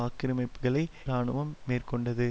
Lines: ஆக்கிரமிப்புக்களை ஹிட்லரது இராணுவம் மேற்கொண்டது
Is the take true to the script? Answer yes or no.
no